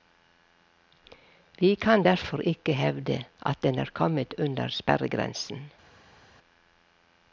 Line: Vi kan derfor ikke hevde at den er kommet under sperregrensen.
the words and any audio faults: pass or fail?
pass